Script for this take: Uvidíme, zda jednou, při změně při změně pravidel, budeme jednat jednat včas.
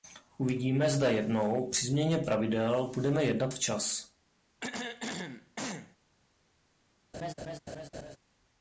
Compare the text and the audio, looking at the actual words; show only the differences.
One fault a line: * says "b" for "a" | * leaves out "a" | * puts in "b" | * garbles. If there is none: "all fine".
* leaves out "při změně"
* leaves out "jednat"